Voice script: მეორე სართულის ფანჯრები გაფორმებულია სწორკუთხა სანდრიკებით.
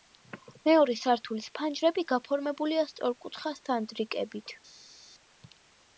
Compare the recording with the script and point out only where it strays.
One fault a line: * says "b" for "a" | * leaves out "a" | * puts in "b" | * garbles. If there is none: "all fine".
all fine